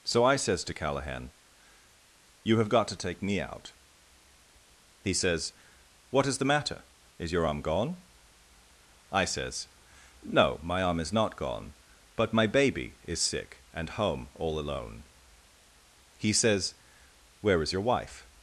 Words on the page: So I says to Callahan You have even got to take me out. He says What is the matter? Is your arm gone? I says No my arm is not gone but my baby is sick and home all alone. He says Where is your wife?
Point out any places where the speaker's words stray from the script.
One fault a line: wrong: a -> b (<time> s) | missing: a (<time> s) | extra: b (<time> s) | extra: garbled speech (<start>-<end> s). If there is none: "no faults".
missing: even (2.7 s)